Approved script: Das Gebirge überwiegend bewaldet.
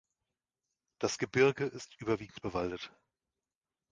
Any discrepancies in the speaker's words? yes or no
yes